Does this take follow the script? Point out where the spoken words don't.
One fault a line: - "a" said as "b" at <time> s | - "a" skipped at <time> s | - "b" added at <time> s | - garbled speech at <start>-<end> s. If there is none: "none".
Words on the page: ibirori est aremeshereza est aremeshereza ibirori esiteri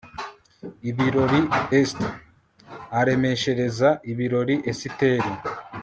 - "est aremeshereza" skipped at 3.9 s